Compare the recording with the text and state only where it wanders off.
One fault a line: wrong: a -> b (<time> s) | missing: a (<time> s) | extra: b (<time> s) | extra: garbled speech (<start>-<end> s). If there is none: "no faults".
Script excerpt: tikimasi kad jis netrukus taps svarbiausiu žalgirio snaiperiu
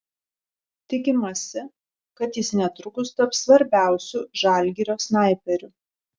no faults